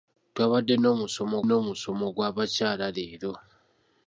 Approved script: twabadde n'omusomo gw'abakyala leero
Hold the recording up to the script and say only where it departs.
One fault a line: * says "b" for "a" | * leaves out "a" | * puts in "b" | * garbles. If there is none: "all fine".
* puts in "n'omusomo"